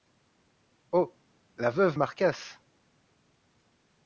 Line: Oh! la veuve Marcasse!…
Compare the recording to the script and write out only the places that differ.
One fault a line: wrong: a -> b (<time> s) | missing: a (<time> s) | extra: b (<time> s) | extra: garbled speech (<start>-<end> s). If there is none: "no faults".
no faults